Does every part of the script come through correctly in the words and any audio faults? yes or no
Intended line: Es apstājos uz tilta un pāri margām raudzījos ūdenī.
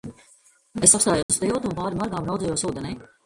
no